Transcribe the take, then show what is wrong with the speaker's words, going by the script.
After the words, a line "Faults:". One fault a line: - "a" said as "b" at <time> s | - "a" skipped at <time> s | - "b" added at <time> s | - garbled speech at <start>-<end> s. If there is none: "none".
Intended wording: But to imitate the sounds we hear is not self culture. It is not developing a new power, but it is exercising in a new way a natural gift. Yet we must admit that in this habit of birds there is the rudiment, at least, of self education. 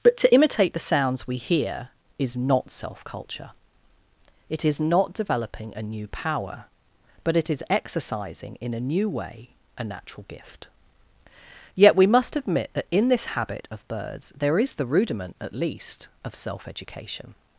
But to imitate the sounds we hear is not self culture. It is not developing a new power, but it is exercising in a new way a natural gift. Yet we must admit that in this habit of birds there is the rudiment, at least, of self education.
Faults:
none